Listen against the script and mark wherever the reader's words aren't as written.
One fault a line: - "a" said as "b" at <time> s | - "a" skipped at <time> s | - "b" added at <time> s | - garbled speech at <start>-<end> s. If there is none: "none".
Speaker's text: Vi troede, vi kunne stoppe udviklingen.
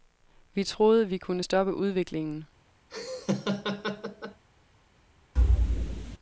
none